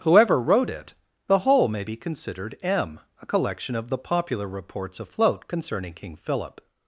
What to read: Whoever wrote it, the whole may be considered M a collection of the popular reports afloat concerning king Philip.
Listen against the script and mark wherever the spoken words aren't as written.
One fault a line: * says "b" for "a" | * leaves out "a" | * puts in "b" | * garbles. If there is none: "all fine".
all fine